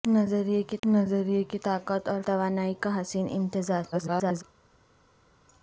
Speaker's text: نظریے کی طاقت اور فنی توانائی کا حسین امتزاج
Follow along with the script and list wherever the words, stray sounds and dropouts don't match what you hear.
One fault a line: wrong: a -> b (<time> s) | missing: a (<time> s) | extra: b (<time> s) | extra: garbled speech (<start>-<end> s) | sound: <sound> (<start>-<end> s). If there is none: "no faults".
extra: نظریے کی (0.9 s)
missing: فنی (2.2 s)
extra: garbled speech (3.9-4.4 s)